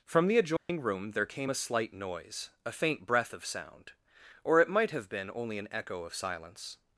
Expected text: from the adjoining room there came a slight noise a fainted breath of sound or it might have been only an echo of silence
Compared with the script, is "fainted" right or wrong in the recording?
wrong